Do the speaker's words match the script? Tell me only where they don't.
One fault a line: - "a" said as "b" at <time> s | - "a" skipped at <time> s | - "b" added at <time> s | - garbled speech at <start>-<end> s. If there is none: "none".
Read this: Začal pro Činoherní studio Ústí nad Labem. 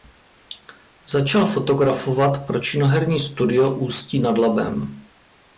- "fotografovat" added at 1.5 s